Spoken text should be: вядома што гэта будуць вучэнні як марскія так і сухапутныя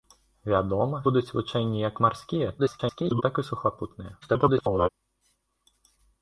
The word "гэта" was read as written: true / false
false